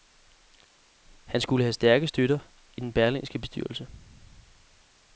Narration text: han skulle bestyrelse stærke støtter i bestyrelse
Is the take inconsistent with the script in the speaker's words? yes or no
yes